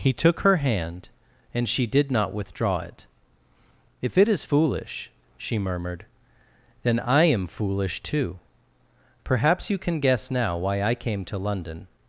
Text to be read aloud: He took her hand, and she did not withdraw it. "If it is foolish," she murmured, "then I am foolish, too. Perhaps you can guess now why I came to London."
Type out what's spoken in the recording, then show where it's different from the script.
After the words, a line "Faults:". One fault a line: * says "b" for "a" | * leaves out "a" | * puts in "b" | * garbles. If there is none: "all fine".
He took her hand, and she did not withdraw it. "If it is foolish," she murmured, "then I am foolish, too. Perhaps you can guess now why I came to London."
Faults:
all fine